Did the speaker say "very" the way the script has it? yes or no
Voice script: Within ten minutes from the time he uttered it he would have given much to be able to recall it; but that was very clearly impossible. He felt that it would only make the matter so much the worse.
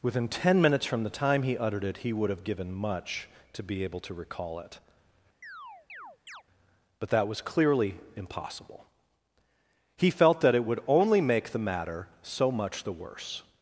no